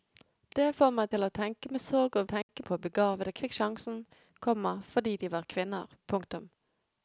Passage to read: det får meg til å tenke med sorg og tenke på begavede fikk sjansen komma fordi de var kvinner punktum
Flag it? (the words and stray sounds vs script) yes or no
yes